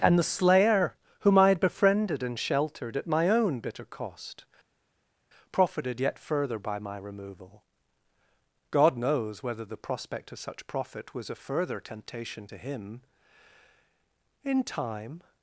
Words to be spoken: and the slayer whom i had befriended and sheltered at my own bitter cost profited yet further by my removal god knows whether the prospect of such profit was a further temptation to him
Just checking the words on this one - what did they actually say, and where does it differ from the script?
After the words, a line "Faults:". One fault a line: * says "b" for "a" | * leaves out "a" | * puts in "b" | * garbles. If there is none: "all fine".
and the slayer whom i had befriended and sheltered at my own bitter cost profited yet further by my removal god knows whether the prospect of such profit was a further temptation to him in time
Faults:
* puts in "in time"